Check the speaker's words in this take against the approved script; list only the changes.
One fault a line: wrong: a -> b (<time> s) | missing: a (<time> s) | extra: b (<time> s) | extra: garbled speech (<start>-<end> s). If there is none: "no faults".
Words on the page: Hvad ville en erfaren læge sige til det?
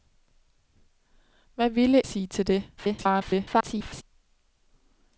missing: en erfaren læge (2.1 s)
extra: garbled speech (2.8-4.0 s)